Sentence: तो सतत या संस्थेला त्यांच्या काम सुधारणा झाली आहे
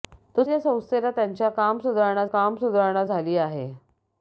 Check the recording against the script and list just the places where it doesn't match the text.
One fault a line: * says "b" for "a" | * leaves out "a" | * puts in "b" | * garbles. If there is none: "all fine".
* leaves out "सतत"
* puts in "काम सुधारणा"